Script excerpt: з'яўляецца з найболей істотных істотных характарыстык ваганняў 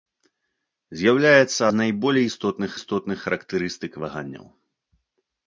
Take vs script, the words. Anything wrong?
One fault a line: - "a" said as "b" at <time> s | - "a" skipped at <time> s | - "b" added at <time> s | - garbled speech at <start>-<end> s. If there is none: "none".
none